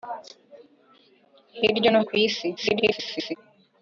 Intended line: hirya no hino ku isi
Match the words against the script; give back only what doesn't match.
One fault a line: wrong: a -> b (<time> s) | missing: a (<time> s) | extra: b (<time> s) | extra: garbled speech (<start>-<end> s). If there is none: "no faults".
missing: hino (2.0 s)
extra: garbled speech (2.6-3.4 s)